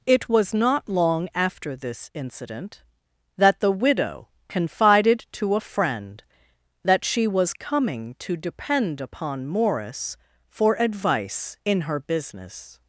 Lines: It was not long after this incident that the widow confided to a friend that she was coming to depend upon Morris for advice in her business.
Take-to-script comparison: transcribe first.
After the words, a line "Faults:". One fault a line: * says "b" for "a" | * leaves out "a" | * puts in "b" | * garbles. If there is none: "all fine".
It was not long after this incident that the widow confided to a friend that she was coming to depend upon Morris for advice in her business.
Faults:
all fine